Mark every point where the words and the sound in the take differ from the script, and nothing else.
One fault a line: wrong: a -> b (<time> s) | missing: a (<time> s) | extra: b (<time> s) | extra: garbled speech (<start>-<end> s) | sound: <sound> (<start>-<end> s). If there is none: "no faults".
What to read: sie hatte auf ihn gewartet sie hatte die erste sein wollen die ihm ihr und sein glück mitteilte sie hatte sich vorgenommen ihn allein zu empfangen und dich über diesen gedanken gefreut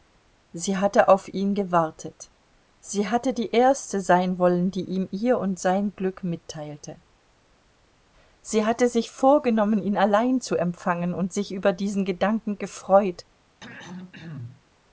wrong: dich -> sich (11.3 s)
sound: throat clearing (13.6-14.6 s)